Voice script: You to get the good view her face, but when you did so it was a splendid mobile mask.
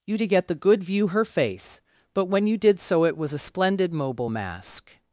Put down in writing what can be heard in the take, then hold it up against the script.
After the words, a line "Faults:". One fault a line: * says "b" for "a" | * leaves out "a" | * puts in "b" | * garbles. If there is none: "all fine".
You to get the good view her face, but when you did so it was a splendid mobile mask.
Faults:
all fine